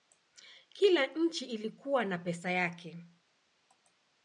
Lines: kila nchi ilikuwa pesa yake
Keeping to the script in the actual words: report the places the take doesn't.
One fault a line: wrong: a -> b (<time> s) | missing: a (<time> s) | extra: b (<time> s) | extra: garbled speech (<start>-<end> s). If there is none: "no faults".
extra: na (2.0 s)